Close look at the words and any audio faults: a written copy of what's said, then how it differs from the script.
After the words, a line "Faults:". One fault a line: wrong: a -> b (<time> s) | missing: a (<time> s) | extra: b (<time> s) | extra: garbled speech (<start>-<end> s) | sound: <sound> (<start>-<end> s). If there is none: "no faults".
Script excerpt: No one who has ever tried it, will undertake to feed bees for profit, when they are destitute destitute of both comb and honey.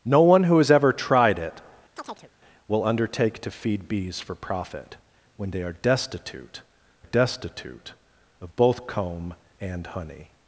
No one who has ever tried it, will undertake to feed bees for profit, when they are destitute destitute of both comb and honey.
Faults:
sound: chirp (2.0-2.3 s)